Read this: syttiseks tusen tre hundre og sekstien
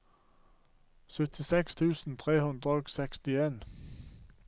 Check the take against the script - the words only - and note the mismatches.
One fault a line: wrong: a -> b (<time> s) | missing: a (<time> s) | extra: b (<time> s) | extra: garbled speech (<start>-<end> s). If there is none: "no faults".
no faults